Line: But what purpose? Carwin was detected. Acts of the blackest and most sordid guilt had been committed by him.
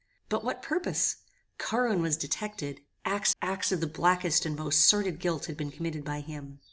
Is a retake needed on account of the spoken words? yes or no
yes